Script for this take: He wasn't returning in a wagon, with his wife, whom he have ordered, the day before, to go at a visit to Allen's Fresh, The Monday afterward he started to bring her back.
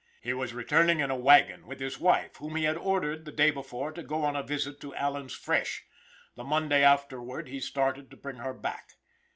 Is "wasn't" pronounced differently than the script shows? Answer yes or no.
yes